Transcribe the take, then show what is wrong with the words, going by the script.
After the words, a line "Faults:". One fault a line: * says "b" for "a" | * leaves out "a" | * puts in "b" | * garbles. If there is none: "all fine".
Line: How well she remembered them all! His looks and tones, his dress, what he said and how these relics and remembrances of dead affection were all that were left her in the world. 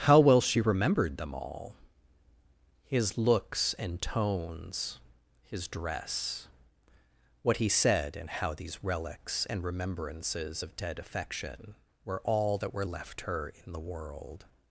How well she remembered them all! His looks and tones, his dress, what he said and how these relics and remembrances of dead affection were all that were left her in the world.
Faults:
all fine